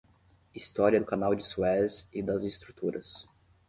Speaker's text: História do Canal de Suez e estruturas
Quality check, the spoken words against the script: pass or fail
fail